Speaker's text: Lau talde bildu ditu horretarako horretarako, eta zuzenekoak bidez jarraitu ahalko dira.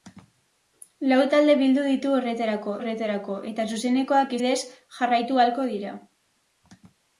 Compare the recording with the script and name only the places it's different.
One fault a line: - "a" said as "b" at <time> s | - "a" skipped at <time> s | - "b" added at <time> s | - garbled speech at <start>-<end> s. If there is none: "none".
none